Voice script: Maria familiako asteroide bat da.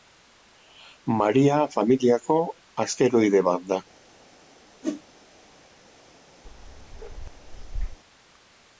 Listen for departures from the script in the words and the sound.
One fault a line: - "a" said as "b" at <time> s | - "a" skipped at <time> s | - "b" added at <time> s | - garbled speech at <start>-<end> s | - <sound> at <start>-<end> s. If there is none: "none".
- whoosh at 4.8-5.0 s
- bark at 6.4-8.0 s